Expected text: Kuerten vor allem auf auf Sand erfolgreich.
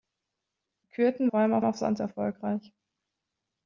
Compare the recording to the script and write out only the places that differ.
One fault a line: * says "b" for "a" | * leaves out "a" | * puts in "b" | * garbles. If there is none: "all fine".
all fine